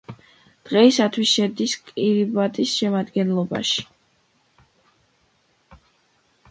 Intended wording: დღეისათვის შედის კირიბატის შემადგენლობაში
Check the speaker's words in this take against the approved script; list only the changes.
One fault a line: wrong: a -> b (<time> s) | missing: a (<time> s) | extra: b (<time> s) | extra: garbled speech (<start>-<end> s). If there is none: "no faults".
no faults